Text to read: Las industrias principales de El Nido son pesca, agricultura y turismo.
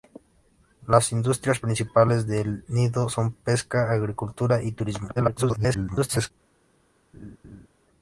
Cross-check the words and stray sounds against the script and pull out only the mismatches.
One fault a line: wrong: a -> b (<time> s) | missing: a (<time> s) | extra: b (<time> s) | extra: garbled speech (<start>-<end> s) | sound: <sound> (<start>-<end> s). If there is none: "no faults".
extra: garbled speech (5.2-6.3 s)
sound: laugh (7.1-7.7 s)